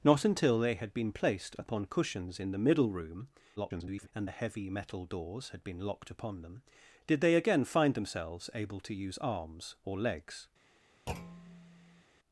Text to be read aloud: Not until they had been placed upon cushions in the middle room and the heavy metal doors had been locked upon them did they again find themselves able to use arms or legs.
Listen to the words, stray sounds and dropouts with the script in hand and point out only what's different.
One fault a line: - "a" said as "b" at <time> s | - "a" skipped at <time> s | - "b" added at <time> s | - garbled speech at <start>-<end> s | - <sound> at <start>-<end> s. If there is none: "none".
- garbled speech at 3.6-4.1 s
- thud at 11.1-12.0 s